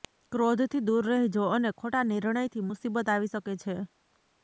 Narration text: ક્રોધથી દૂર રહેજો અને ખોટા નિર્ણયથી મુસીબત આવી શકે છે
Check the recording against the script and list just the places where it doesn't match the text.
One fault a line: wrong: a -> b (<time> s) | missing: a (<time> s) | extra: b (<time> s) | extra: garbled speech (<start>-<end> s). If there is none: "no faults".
no faults